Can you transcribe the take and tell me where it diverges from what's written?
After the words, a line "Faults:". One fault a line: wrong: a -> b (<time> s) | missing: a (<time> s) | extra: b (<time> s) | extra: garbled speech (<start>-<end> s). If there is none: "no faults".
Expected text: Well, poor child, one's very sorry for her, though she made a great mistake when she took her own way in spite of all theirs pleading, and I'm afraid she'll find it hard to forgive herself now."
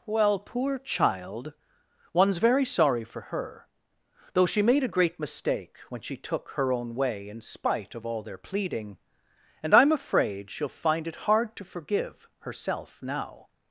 Well, poor child, one's very sorry for her, though she made a great mistake when she took her own way in spite of all their pleading, and I'm afraid she'll find it hard to forgive herself now."
Faults:
wrong: theirs -> their (8.2 s)